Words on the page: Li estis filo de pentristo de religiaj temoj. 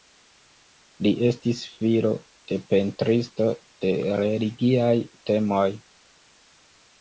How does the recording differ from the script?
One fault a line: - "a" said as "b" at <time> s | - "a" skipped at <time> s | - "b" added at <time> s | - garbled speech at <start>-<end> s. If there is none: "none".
none